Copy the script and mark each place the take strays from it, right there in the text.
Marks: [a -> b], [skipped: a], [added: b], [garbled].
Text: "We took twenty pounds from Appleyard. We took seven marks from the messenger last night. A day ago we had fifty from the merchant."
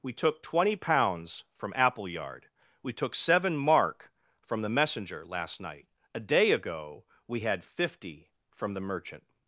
"We took twenty pounds from Appleyard. We took seven [marks -> mark] from the messenger last night. A day ago we had fifty from the merchant."